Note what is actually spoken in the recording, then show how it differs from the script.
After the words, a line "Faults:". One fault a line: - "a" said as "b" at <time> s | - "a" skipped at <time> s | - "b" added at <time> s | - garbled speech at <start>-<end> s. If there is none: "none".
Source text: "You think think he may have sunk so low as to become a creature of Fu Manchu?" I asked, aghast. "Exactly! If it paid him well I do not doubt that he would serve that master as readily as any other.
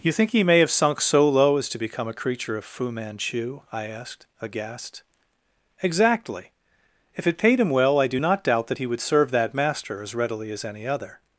"You think he may have sunk so low as to become a creature of Fu Manchu?" I asked, aghast. "Exactly! If it paid him well I do not doubt that he would serve that master as readily as any other.
Faults:
- "think" skipped at 0.3 s